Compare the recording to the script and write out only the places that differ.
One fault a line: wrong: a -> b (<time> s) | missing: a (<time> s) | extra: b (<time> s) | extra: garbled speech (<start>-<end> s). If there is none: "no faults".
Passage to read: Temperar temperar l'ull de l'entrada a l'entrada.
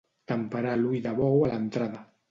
missing: temperar (0.7 s)
wrong: l'entrada -> bou (1.2 s)